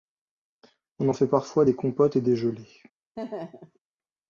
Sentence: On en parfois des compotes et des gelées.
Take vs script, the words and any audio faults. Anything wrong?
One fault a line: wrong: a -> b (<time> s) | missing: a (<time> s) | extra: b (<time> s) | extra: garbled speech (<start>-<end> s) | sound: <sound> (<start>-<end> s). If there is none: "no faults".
extra: fait (1.1 s)
sound: laugh (3.2-3.8 s)